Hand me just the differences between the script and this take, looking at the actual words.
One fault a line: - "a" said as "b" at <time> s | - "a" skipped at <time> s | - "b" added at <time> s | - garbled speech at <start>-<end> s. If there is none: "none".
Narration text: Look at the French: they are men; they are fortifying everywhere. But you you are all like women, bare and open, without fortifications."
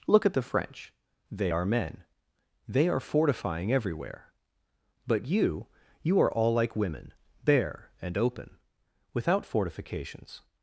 none